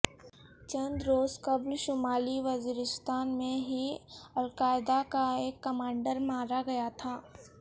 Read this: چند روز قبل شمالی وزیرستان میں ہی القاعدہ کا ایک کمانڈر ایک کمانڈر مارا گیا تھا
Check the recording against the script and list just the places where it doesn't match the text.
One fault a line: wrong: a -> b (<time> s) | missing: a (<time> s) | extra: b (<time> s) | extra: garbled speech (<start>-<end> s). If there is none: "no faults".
missing: ایک کمانڈر (6.2 s)